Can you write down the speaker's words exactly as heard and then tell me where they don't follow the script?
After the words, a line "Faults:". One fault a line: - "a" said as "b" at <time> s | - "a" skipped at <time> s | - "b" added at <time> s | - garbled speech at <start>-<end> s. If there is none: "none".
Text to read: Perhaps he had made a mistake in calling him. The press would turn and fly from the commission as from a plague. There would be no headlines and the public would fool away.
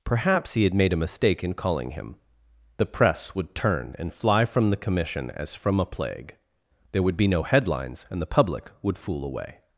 Perhaps he had made a mistake in calling him. The press would turn and fly from the commission as from a plague. There would be no headlines and the public would fool away.
Faults:
none